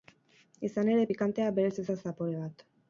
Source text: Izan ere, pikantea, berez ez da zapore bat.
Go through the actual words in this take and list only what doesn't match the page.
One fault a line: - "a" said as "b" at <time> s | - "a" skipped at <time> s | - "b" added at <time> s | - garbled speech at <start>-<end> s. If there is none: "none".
none